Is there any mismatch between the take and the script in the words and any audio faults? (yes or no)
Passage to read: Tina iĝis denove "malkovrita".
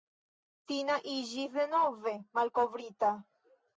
no